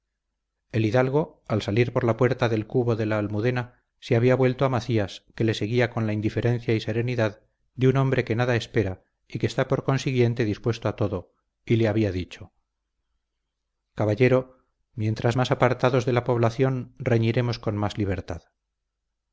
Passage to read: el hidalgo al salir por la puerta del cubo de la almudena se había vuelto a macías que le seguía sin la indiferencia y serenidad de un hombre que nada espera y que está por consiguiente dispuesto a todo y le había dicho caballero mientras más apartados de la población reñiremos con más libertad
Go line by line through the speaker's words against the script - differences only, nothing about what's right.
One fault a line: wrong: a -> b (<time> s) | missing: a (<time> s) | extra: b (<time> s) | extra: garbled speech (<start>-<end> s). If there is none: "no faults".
wrong: sin -> con (5.9 s)